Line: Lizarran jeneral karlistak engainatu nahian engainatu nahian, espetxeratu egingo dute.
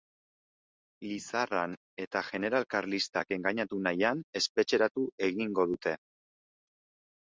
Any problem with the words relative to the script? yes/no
yes